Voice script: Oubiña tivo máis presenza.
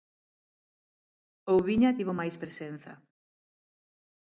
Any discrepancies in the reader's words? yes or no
no